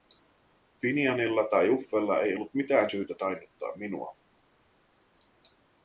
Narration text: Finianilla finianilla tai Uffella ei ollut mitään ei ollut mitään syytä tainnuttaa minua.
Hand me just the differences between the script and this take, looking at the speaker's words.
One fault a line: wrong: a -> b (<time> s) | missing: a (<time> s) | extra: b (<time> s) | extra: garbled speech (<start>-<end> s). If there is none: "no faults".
missing: finianilla (1.4 s)
missing: ei ollut mitään (2.9 s)